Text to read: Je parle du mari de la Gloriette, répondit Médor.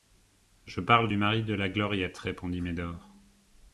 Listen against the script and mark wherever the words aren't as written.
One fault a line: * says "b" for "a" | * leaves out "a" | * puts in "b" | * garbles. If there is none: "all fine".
all fine